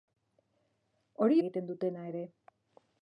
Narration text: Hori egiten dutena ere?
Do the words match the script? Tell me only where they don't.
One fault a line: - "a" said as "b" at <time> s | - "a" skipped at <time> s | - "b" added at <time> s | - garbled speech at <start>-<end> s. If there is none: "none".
none